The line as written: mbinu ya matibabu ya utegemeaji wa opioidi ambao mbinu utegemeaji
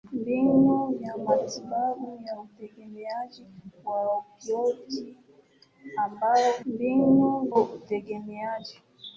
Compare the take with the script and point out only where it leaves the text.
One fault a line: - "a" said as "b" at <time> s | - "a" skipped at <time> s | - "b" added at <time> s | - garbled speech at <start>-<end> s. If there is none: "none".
none